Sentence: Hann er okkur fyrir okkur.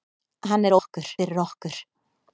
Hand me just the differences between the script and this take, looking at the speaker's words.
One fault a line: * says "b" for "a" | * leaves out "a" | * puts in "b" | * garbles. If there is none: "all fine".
all fine